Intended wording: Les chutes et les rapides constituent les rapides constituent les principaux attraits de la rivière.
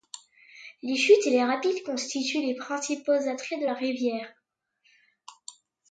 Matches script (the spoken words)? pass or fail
fail